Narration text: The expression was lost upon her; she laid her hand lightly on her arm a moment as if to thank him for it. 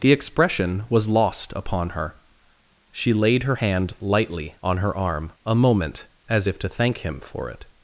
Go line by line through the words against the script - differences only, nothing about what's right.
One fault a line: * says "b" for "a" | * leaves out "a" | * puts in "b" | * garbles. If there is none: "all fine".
all fine